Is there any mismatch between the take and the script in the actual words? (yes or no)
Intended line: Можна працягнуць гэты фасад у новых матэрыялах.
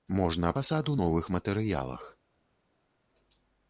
yes